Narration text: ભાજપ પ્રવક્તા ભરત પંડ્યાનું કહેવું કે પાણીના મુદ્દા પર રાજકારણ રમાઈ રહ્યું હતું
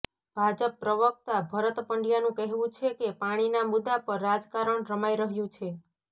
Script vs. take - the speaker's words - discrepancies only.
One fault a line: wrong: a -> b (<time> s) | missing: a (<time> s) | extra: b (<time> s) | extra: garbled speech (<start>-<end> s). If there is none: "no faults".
extra: છે (2.8 s)
wrong: હતું -> છે (5.5 s)